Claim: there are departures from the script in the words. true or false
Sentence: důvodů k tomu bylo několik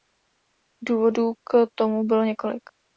false